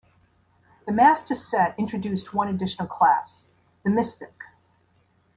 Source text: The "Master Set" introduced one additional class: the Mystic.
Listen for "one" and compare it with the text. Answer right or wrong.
right